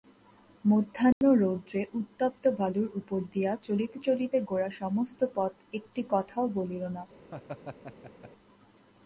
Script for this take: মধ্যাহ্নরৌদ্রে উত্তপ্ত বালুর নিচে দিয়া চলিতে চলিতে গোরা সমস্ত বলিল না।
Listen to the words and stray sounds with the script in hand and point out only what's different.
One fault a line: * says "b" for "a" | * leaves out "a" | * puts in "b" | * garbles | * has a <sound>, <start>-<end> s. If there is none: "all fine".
* has a dropout, 1.1-1.2 s
* says "উপর" for "নিচে"
* puts in "পথ একটি কথাও"
* has a laugh, 7.3-8.3 s